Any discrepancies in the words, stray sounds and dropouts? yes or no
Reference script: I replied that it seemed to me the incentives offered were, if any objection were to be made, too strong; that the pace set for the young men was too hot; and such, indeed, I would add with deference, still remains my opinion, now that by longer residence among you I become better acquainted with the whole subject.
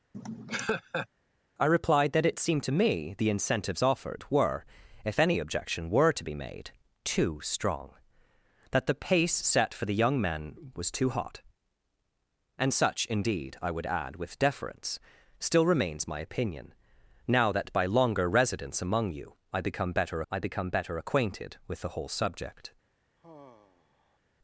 yes